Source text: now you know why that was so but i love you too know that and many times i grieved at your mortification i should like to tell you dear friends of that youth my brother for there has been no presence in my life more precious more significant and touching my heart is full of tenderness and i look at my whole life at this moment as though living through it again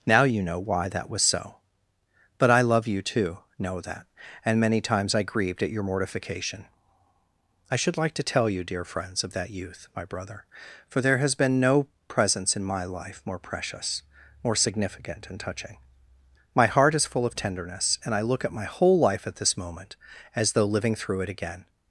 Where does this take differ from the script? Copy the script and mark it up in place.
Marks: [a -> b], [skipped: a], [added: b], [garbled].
now you know why that was so but i love you too know that and many times i grieved at your mortification i should like to tell you dear friends of that youth my brother for there has been no presence in my life more precious more significant and touching my heart is full of tenderness and i look at my whole life at this moment as though living through it again